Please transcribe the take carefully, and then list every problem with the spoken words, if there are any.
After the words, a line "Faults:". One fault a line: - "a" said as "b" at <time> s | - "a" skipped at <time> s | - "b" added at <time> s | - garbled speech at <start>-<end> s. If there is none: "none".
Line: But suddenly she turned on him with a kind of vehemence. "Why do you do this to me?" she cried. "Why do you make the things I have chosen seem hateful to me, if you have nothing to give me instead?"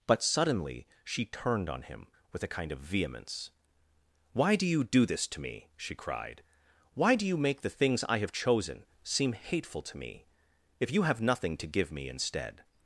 But suddenly she turned on him with a kind of vehemence. "Why do you do this to me?" she cried. "Why do you make the things I have chosen seem hateful to me, if you have nothing to give me instead?"
Faults:
none